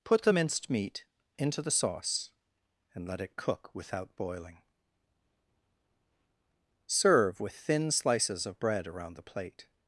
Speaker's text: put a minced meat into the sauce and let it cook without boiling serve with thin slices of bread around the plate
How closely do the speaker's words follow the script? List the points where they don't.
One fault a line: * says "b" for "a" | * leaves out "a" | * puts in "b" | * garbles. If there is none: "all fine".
* says "the" for "a"